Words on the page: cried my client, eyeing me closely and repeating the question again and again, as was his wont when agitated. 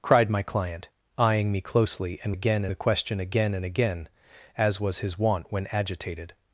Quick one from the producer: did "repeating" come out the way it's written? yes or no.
no